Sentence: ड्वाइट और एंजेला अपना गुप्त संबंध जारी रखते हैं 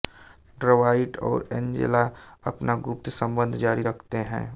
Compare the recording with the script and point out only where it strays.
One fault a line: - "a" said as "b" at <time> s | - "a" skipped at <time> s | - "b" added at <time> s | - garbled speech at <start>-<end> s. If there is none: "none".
none